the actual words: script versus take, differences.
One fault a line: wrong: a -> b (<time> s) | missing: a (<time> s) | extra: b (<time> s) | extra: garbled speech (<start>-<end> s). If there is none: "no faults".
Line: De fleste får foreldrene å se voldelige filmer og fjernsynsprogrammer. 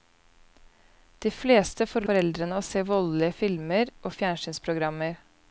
no faults